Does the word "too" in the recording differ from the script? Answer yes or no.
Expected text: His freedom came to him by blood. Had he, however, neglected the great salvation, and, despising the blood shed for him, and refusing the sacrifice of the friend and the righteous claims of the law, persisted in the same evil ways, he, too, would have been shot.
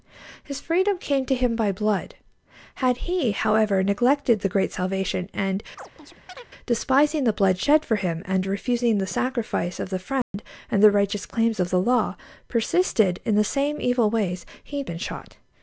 yes